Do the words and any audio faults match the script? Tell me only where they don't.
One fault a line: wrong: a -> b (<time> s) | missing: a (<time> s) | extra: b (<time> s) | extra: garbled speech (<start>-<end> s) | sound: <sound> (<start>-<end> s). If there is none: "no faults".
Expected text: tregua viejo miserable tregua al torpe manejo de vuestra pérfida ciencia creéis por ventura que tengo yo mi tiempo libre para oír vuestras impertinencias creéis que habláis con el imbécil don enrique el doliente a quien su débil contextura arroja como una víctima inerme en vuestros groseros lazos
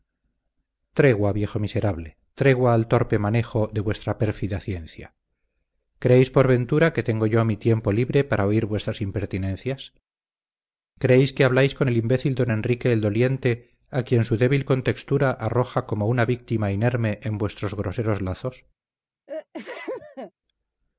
sound: sneeze (19.3-20.3 s)